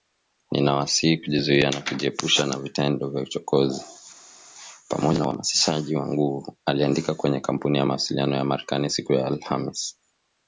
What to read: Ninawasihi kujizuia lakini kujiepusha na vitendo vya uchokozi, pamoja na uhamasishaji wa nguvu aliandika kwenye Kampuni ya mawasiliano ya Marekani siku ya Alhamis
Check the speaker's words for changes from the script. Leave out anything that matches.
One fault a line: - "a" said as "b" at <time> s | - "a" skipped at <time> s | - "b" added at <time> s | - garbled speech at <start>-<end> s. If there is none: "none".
- "lakini" said as "na" at 1.7 s